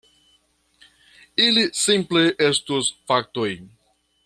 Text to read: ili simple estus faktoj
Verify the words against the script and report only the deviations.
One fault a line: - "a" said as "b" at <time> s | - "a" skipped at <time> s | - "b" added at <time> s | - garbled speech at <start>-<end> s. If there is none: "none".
none